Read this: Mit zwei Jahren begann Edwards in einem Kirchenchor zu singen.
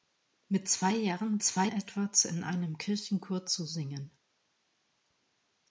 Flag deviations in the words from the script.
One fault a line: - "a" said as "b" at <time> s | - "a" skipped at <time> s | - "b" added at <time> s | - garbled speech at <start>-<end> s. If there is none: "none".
- "begann" said as "zwei" at 1.4 s